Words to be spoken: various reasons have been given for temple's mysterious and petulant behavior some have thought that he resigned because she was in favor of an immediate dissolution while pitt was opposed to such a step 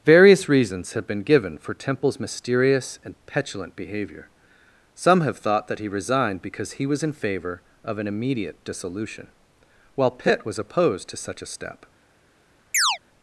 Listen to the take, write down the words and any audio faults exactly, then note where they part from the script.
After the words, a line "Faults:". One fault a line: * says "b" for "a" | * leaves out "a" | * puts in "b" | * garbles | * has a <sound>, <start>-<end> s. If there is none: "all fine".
various reasons have been given for temple's mysterious and petulant behavior some have thought that he resigned because he was in favor of an immediate dissolution while pitt was opposed to such a step
Faults:
* says "he" for "she"
* has a chirp, 12.7-13.0 s